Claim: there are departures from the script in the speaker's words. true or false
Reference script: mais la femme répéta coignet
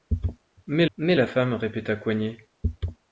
true